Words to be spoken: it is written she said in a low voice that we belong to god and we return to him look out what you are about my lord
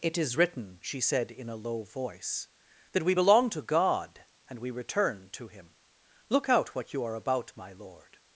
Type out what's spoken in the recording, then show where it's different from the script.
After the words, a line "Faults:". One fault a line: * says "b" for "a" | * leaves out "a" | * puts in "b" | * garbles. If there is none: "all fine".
it is written she said in a low voice that we belong to god and we return to him look out what you are about my lord
Faults:
all fine